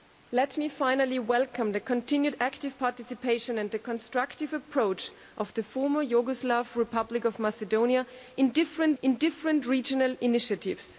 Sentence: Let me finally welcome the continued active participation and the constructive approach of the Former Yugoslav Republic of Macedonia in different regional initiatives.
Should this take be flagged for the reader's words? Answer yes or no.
yes